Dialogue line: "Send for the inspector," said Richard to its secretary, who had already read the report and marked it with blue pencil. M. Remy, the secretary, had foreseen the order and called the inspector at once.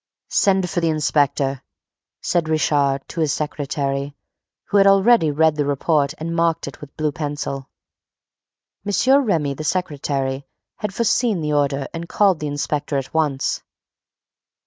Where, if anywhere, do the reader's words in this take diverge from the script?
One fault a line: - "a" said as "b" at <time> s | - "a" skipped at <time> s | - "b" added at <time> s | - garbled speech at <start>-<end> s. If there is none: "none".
- "its" said as "his" at 3.2 s